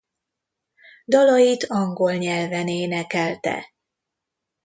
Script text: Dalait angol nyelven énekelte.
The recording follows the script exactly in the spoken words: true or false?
true